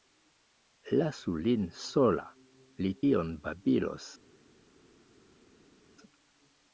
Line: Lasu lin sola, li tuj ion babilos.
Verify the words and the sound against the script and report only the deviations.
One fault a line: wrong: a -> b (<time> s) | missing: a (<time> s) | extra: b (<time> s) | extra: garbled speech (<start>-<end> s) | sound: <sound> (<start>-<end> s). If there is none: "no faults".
missing: tuj (2.9 s)